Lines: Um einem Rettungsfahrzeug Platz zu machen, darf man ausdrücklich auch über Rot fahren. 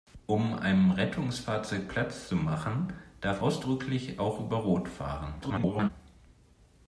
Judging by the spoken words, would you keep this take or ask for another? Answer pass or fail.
fail